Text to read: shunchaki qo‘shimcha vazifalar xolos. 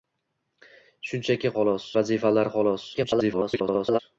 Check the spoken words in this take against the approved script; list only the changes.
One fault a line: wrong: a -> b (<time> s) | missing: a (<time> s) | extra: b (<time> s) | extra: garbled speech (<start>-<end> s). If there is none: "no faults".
wrong: qo‘shimcha -> xolos (1.6 s)
extra: garbled speech (2.9-4.0 s)